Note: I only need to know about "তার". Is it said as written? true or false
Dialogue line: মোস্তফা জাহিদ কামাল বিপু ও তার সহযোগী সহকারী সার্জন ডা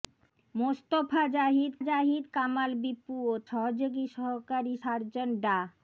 false